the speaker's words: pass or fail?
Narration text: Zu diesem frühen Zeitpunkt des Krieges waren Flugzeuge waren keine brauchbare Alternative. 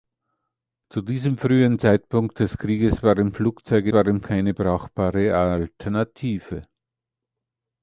pass